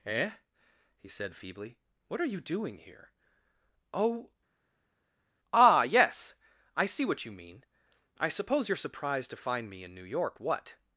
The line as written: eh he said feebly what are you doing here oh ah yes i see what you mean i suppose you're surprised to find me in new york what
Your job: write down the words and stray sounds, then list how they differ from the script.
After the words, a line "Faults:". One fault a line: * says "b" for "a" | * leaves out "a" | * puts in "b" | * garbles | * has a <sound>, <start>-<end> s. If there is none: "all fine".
eh he said feebly what are you doing here oh ah yes i see what you mean i suppose you're surprised to find me in new york what
Faults:
all fine